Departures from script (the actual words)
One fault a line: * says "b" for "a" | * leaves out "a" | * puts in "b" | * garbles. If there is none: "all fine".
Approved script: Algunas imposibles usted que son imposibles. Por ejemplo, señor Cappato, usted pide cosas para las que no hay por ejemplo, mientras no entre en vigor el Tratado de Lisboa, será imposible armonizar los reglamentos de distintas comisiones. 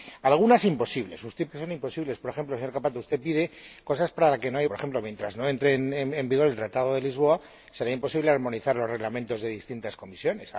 all fine